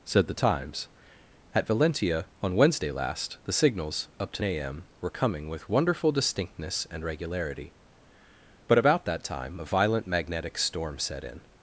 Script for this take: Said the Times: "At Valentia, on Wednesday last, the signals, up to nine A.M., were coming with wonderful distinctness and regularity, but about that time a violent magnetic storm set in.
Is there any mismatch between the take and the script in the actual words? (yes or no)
yes